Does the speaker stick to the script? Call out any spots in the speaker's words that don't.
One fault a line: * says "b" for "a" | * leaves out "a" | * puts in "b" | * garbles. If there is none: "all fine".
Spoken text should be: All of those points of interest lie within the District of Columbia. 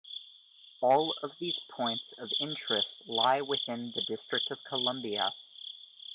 * says "these" for "those"